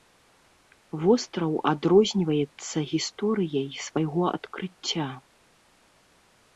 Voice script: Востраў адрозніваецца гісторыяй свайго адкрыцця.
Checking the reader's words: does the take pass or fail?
pass